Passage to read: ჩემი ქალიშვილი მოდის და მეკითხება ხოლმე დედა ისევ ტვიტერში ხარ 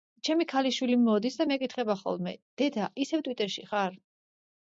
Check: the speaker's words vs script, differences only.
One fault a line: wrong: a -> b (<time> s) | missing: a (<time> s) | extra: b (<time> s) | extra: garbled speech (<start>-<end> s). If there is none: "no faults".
no faults